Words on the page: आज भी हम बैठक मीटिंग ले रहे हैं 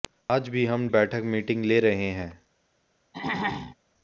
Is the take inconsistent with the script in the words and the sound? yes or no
yes